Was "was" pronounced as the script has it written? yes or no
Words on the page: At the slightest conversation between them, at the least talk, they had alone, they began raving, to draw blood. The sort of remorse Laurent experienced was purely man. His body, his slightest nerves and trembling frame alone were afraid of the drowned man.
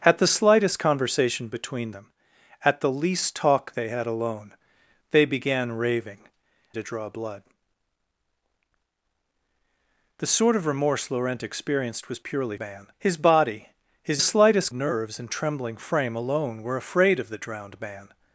yes